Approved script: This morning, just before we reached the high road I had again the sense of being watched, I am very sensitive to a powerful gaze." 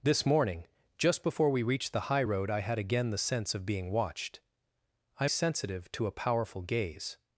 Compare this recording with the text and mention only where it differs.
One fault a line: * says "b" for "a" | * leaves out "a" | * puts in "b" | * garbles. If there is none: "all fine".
* leaves out "am very"